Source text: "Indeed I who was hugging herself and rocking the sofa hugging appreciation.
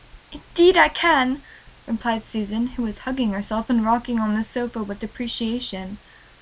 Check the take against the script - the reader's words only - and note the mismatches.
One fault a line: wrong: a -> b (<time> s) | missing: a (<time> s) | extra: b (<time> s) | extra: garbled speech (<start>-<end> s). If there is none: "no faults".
extra: can replied Susan (0.9 s)
extra: on (4.2 s)
wrong: hugging -> with (4.8 s)